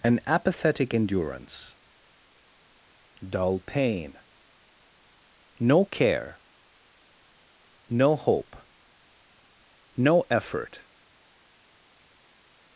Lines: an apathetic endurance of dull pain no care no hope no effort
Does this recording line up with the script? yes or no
no